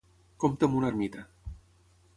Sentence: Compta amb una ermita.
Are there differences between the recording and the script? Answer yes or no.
no